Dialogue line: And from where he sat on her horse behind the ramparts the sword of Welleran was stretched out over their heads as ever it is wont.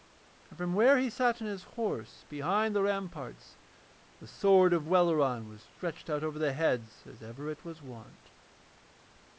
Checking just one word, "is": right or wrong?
wrong